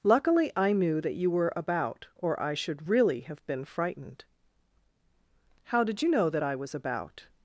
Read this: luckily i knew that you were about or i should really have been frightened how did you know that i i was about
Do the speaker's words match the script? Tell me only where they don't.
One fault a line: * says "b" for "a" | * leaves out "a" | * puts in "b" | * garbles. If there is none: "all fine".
* leaves out "i"